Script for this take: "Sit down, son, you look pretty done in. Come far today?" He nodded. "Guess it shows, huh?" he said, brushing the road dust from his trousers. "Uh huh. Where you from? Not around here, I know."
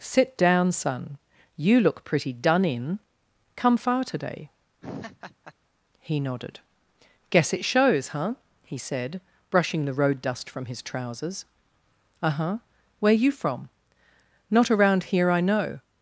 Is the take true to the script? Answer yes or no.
yes